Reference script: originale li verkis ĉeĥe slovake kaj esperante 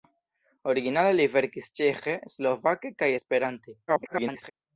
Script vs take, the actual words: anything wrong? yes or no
yes